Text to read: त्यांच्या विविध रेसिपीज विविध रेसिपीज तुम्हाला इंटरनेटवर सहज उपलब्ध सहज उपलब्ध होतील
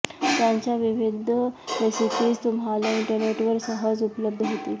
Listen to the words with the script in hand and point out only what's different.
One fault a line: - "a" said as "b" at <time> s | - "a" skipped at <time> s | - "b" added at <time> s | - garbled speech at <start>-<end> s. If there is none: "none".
- "विविध रेसिपीज" skipped at 2.4 s
- "सहज उपलब्ध" skipped at 4.4 s